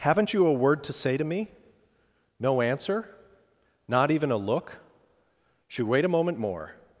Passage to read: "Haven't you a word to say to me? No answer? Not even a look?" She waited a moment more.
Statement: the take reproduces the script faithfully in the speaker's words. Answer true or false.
false